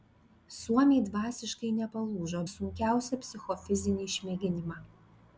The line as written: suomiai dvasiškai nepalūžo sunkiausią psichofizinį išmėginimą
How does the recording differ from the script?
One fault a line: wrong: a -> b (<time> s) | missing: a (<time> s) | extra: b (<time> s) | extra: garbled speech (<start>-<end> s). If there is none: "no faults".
no faults